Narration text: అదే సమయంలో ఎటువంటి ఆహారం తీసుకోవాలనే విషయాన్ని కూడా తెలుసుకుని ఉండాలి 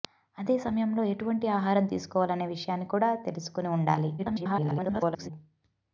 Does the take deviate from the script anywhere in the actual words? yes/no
yes